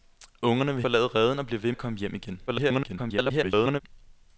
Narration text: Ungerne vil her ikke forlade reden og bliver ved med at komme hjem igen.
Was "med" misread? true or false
true